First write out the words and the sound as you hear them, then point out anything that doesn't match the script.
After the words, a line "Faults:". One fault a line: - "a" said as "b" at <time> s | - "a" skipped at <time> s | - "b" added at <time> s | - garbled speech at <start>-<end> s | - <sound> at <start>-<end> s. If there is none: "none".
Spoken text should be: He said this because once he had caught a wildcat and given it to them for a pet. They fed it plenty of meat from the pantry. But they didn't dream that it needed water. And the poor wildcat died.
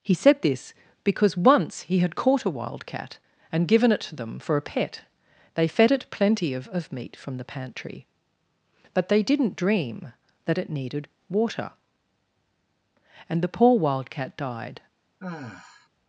He said this because once he had caught a wildcat and given it to them for a pet. They fed it plenty of of meat from the pantry. But they didn't dream that it needed water. And the poor wildcat died.
Faults:
- "of" added at 6.7 s
- sigh at 15.2-15.9 s